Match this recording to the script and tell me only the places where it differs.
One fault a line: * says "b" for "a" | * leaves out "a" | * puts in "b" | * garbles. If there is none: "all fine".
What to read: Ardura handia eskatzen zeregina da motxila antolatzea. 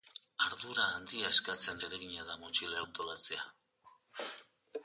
all fine